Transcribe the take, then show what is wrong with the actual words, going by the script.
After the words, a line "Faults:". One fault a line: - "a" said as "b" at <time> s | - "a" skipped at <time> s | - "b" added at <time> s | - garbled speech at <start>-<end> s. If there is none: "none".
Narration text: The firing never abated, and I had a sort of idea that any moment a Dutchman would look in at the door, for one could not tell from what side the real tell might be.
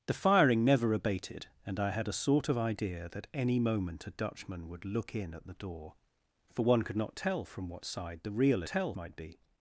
The firing never abated, and I had a sort of idea that any moment a Dutchman would look in at the door, for one could not tell from what side the real tell might be.
Faults:
none